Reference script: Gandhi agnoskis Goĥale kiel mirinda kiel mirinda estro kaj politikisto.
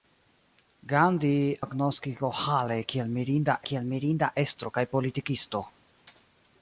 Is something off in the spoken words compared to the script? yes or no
no